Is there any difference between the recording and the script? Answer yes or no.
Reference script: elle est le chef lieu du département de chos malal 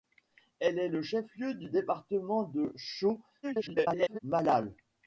yes